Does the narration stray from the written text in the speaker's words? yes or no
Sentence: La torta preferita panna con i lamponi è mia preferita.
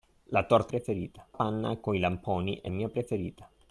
no